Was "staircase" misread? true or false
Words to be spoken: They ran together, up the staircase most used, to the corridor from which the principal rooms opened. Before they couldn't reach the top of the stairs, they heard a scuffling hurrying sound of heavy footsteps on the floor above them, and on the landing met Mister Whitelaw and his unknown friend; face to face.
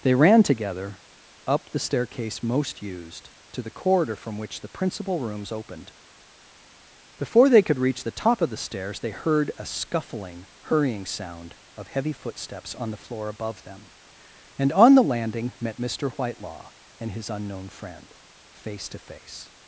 false